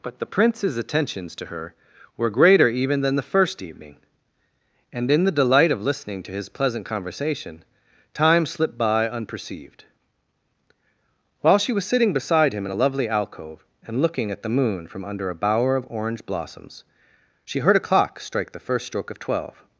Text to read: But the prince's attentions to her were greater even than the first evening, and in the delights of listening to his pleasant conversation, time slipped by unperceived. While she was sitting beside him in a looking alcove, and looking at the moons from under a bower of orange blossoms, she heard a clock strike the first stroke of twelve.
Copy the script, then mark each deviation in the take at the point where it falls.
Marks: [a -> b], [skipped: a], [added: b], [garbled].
But the prince's attentions to her were greater even than the first evening, and in the [delights -> delight] of listening to his pleasant conversation, time slipped by unperceived. While she was sitting beside him in a [looking -> lovely] alcove, and looking at the [moons -> moon] from under a bower of orange blossoms, she heard a clock strike the first stroke of twelve.